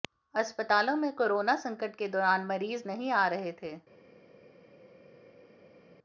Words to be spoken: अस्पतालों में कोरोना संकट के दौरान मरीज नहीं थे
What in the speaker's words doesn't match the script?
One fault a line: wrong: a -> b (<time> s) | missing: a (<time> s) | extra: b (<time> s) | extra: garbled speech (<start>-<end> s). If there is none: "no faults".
extra: आ रहे (3.1 s)